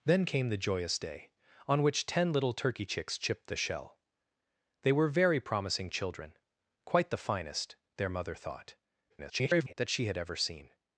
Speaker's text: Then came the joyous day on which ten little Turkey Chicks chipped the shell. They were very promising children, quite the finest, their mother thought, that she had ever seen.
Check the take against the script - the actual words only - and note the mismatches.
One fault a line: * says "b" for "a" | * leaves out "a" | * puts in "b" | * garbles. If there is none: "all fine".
* garbles